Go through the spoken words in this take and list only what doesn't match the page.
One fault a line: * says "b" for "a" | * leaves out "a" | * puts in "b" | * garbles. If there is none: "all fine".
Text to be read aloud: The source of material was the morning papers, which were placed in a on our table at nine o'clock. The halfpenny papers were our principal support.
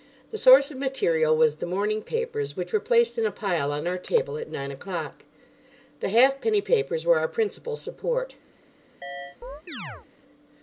* puts in "pile"